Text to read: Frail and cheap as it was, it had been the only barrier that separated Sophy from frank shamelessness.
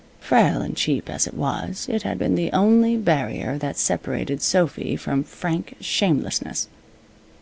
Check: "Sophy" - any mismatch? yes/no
no